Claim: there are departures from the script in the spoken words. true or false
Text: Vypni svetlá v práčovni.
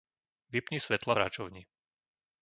true